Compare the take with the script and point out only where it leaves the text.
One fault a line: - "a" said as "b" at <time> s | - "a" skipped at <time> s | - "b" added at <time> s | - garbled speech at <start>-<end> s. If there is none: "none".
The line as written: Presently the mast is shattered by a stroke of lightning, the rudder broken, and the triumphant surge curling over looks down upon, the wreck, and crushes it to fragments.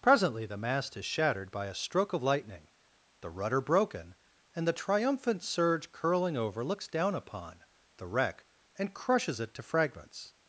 none